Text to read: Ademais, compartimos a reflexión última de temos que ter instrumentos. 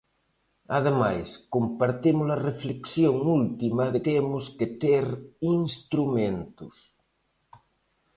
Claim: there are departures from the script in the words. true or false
false